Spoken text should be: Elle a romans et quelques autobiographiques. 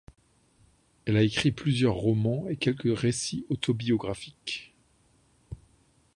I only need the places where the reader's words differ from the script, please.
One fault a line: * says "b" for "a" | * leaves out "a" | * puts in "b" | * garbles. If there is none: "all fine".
* puts in "écrit plusieurs"
* puts in "récits"